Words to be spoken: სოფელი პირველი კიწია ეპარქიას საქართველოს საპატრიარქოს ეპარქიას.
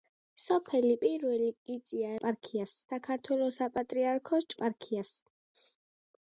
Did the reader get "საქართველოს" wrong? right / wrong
right